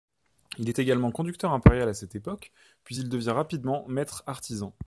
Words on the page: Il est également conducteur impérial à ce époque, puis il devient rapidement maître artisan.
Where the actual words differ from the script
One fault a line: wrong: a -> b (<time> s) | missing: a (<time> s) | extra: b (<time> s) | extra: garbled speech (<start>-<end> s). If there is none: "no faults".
wrong: ce -> cette (1.9 s)